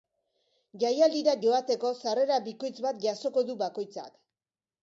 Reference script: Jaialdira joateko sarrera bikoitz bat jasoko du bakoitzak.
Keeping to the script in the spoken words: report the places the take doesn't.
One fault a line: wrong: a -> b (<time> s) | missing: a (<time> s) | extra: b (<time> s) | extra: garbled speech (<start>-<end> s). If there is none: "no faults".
no faults